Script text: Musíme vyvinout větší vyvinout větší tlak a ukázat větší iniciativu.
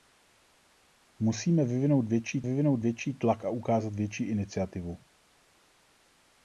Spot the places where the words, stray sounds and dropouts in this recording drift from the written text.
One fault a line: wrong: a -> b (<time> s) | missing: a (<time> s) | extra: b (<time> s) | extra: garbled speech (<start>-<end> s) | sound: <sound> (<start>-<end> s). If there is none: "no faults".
no faults